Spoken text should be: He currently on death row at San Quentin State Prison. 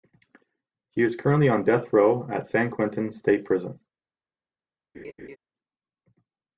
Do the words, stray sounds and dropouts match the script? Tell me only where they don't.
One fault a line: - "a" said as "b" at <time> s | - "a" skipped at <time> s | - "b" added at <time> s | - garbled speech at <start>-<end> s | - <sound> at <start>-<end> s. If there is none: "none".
- "is" added at 1.0 s
- laugh at 4.9-5.4 s